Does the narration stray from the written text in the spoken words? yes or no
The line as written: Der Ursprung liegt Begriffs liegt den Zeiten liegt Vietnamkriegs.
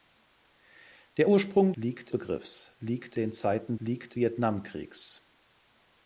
no